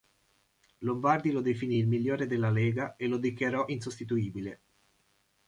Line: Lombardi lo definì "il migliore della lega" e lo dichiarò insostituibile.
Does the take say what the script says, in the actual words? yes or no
yes